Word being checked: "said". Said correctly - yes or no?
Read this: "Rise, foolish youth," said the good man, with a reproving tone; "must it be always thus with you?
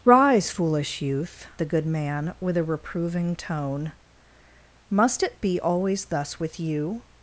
no